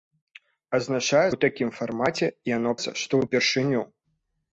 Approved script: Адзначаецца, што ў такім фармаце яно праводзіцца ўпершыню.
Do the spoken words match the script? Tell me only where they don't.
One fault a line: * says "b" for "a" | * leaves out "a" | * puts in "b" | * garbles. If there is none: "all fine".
* leaves out "што"
* says "што" for "праводзіцца"